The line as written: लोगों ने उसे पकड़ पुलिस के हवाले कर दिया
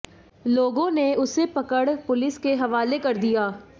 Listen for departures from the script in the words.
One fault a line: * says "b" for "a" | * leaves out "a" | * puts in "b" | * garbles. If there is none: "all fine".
all fine